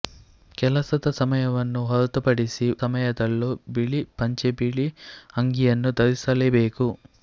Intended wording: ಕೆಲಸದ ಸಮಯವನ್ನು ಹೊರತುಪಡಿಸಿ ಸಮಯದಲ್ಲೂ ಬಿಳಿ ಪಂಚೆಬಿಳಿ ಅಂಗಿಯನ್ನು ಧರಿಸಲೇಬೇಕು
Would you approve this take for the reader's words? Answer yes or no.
yes